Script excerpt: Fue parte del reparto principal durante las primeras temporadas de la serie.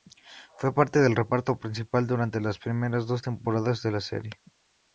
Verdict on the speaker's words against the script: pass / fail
fail